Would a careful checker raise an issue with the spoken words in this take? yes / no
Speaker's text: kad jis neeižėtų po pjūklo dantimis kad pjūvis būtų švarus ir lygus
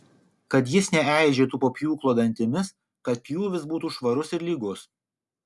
no